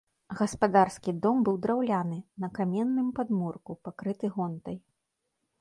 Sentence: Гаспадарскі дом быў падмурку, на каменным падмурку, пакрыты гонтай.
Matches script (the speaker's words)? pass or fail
fail